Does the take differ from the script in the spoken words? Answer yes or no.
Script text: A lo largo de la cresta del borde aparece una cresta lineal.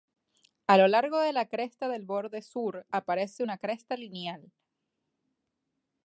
yes